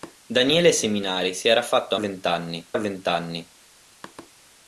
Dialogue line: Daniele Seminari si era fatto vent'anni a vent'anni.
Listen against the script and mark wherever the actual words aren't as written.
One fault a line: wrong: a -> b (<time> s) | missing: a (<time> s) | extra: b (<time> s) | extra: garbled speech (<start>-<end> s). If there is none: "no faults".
no faults